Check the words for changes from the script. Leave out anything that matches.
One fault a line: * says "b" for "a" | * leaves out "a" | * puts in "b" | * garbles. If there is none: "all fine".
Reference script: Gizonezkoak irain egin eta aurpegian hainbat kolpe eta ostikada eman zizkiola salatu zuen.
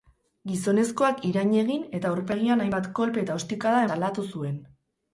* leaves out "eman zizkiola"